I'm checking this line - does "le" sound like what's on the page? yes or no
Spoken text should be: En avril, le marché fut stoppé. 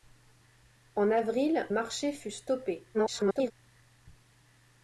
no